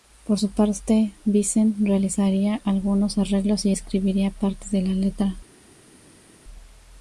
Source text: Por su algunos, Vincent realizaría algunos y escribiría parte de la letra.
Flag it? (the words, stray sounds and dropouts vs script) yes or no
yes